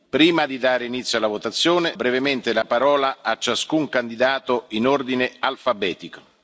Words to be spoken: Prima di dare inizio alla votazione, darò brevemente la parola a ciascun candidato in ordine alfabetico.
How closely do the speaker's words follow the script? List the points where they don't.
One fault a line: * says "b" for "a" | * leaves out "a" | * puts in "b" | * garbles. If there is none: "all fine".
* leaves out "darò"